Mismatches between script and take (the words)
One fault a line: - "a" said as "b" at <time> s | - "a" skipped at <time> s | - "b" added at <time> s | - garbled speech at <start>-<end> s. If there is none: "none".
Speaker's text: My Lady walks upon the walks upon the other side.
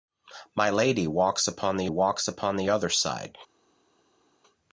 none